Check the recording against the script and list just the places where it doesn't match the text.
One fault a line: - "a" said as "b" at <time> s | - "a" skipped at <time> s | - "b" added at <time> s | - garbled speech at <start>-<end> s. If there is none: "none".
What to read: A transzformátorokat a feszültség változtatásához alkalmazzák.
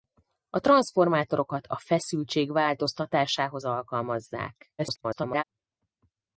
- garbled speech at 4.8-5.4 s